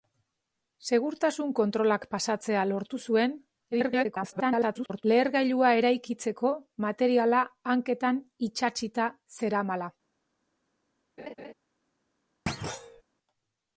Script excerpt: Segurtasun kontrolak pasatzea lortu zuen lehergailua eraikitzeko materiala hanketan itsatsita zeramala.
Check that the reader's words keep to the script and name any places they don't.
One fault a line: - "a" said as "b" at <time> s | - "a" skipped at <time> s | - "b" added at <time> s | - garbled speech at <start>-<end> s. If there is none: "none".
- garbled speech at 3.7-5.1 s